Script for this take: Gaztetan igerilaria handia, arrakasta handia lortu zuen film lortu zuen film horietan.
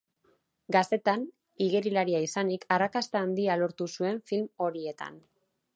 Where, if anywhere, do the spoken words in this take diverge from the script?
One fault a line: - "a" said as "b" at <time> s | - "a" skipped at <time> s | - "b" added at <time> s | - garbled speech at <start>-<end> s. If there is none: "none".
- "handia" said as "izanik" at 2.3 s
- "lortu zuen film" skipped at 4.5 s